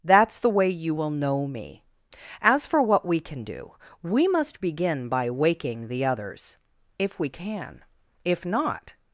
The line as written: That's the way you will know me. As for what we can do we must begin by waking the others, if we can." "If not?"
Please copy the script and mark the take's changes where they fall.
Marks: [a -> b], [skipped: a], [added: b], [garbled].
That's the way you will know me. As for what we can do we must begin by waking the others, if we can." "If not?"